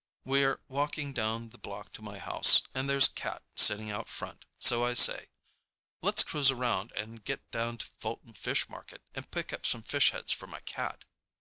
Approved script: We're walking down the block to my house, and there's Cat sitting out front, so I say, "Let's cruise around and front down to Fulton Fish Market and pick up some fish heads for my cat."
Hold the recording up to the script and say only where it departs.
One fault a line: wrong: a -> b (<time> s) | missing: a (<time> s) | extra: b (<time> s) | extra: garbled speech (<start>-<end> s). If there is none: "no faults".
wrong: front -> get (7.2 s)